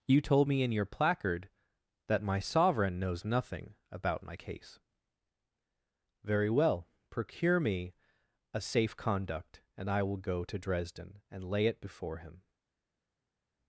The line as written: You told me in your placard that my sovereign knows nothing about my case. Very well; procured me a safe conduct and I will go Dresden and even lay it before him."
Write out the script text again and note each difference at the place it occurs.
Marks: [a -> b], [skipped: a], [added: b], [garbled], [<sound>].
You told me in your placard that my sovereign knows nothing about my case. Very well; [procured -> procure] me a safe conduct and I will go [added: to] Dresden and [skipped: even] lay it before him."